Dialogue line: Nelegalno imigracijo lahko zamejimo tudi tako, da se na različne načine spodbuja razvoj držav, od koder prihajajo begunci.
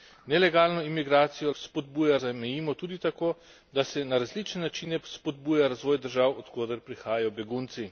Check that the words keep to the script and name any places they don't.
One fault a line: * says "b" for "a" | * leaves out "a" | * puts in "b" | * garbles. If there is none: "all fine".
* says "spodbuja" for "lahko"